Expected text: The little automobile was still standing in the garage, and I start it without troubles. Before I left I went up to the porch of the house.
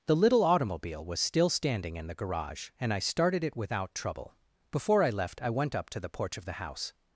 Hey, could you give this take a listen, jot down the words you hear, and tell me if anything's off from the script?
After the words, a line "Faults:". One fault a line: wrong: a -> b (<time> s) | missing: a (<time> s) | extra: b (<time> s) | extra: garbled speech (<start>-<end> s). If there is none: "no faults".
The little automobile was still standing in the garage, and I started it without trouble. Before I left I went up to the porch of the house.
Faults:
wrong: start -> started (3.0 s)
wrong: troubles -> trouble (3.9 s)